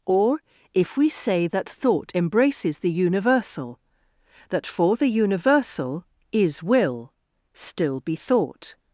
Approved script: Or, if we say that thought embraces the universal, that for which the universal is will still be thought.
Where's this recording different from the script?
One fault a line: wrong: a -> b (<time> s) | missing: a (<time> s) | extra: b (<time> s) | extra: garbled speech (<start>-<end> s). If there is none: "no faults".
missing: which (5.0 s)